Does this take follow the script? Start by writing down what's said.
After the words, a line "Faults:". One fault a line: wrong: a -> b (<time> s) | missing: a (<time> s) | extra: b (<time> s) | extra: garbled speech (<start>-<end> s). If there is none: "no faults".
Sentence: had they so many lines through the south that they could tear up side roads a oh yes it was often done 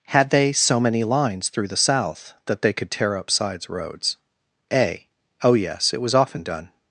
had they so many lines through the south that they could tear up sides roads a oh yes it was often done
Faults:
wrong: side -> sides (3.3 s)